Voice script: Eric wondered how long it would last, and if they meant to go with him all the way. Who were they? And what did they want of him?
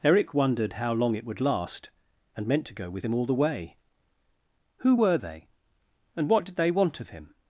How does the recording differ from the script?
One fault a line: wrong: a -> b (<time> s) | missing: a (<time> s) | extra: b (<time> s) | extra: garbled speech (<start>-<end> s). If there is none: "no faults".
missing: if they (2.5 s)